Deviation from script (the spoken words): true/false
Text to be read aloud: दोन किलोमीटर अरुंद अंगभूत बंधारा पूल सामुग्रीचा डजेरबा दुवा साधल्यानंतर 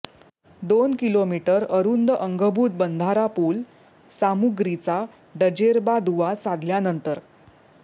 false